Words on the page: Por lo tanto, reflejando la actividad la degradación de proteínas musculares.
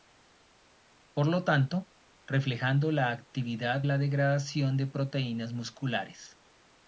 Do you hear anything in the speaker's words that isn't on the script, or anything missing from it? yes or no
no